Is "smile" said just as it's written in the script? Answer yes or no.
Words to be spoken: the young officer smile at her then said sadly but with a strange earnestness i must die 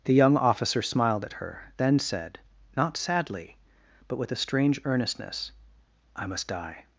no